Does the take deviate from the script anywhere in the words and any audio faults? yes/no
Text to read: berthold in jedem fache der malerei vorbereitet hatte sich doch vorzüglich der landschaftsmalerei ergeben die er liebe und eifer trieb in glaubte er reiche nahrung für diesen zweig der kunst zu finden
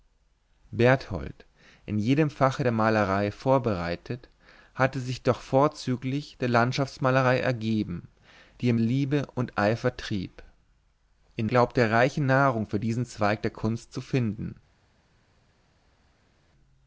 no